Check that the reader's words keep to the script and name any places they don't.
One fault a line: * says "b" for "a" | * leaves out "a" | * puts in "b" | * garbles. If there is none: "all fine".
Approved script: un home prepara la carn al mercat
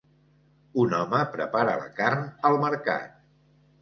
all fine